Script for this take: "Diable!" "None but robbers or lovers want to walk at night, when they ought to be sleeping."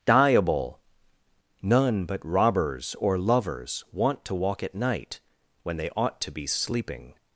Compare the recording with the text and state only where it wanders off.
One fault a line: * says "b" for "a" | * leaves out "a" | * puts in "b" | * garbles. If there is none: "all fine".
all fine